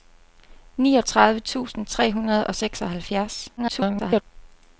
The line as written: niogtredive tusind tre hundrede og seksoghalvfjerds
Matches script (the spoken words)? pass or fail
fail